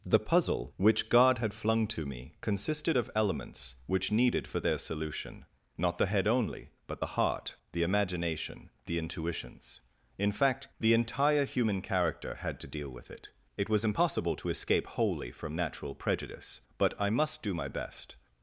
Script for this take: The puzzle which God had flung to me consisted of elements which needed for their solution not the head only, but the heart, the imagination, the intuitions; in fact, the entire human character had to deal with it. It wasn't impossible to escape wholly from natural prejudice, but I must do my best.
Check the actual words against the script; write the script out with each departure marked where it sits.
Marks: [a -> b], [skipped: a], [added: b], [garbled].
The puzzle which God had flung to me consisted of elements which needed for their solution not the head only, but the heart, the imagination, the intuitions; in fact, the entire human character had to deal with it. It [wasn't -> was] impossible to escape wholly from natural prejudice, but I must do my best.